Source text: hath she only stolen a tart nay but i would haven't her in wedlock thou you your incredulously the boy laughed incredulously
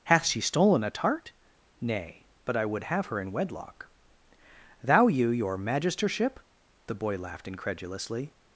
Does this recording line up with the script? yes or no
no